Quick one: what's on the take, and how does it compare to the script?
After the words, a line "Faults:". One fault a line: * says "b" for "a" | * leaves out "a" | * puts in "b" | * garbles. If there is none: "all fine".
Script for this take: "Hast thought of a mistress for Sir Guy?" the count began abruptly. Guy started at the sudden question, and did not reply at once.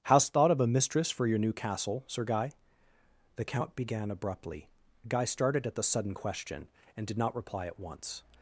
"Hast thought of a mistress for your new castle, Sir Guy?" the count began abruptly. Guy started at the sudden question, and did not reply at once.
Faults:
* puts in "your new castle"